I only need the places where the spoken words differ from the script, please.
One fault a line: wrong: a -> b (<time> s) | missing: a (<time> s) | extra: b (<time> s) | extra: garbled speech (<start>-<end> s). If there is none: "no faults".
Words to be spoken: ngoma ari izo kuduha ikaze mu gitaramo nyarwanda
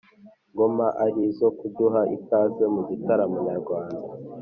no faults